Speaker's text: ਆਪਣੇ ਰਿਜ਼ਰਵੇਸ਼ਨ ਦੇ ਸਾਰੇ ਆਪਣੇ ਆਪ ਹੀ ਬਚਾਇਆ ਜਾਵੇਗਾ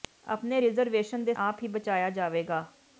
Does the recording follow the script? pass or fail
fail